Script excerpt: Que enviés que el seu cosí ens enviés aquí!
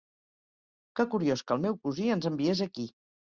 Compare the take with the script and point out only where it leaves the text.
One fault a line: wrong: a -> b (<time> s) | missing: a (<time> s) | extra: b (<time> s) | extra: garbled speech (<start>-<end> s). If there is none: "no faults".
wrong: enviés -> curiós (1.1 s)
wrong: seu -> meu (1.6 s)